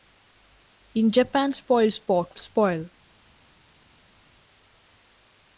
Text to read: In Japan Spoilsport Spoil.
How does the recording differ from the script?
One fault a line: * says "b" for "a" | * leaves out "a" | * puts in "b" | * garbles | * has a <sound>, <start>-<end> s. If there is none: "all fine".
all fine